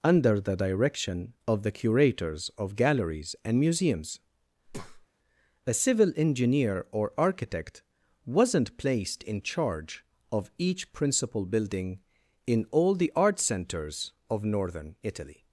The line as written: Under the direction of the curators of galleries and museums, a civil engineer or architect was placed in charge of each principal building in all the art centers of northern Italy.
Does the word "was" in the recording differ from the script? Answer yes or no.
yes